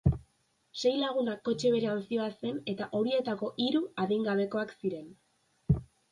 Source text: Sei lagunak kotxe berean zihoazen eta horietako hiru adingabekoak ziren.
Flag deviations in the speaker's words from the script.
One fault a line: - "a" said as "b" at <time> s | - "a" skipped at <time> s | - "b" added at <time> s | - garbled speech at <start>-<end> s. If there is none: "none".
none